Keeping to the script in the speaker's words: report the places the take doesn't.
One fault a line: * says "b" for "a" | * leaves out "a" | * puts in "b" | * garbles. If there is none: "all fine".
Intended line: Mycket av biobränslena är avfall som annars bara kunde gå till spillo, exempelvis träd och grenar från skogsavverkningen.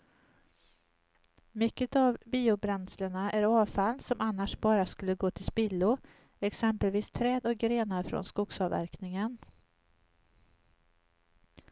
* says "skulle" for "kunde"